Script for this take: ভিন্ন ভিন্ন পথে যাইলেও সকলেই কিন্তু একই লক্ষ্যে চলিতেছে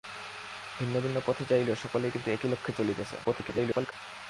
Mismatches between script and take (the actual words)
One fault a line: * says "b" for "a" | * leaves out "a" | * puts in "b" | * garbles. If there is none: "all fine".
* garbles